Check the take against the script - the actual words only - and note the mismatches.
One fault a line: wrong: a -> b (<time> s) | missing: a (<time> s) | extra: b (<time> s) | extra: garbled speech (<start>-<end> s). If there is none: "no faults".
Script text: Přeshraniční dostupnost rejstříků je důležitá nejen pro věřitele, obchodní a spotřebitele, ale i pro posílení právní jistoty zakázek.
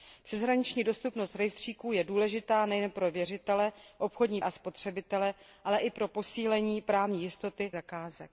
no faults